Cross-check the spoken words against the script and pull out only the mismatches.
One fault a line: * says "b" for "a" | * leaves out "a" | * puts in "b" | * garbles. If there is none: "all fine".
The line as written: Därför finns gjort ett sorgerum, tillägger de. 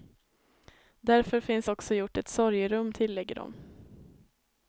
* puts in "också"